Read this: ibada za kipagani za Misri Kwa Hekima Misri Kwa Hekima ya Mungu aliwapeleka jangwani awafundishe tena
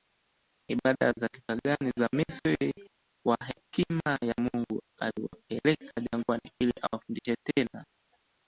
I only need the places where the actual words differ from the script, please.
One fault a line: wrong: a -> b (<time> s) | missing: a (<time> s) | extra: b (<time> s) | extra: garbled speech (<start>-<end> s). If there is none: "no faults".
missing: Misri Kwa Hekima (4.2 s)
extra: ili (6.6 s)